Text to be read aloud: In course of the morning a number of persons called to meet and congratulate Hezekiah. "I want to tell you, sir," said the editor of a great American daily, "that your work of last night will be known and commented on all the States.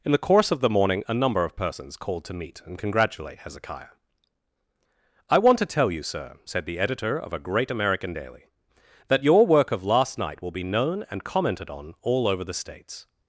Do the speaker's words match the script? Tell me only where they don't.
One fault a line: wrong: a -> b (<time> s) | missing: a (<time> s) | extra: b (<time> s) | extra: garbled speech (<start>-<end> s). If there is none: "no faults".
extra: the (0.1 s)
extra: over (12.3 s)